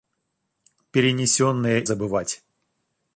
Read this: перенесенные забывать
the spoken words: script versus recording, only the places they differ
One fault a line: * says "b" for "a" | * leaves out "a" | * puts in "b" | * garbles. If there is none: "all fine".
all fine